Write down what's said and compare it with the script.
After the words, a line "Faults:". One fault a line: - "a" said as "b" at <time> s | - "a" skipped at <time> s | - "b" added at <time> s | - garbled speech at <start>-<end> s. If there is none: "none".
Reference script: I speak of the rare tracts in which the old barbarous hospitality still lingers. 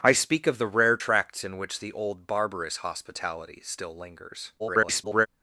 I speak of the rare tracts in which the old barbarous hospitality still lingers. [garbled]
Faults:
- garbled speech at 4.6-5.3 s